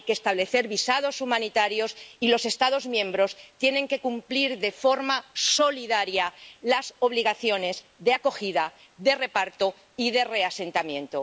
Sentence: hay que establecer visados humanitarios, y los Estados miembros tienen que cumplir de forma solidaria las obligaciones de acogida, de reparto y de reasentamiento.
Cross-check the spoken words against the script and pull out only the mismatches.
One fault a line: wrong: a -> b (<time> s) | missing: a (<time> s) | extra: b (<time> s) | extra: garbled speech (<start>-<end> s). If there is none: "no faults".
no faults